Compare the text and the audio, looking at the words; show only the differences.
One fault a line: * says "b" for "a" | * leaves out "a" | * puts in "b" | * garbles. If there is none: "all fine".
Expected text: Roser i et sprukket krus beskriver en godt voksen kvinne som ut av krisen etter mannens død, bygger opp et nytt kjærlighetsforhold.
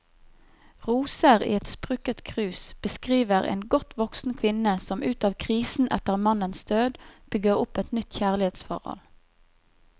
all fine